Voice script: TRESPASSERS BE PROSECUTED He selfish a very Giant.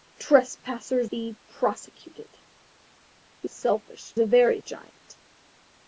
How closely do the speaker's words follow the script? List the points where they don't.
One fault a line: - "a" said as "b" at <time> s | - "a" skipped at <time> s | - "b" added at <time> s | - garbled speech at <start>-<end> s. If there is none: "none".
none